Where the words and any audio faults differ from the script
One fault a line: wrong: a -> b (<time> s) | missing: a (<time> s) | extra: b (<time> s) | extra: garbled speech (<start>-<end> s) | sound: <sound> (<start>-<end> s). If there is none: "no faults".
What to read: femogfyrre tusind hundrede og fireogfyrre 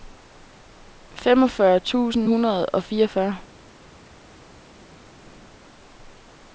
no faults